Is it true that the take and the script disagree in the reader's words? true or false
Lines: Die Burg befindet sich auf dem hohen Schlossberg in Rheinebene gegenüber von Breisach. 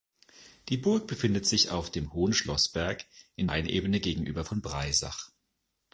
false